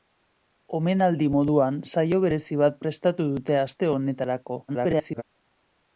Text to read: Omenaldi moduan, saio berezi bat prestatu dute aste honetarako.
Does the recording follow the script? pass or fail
fail